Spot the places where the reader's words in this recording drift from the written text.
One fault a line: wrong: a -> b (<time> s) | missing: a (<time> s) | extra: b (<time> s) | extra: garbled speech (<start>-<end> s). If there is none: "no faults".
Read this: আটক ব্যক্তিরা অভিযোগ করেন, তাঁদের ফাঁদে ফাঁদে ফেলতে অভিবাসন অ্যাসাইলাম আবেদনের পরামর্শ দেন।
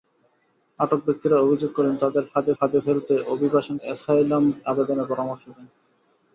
no faults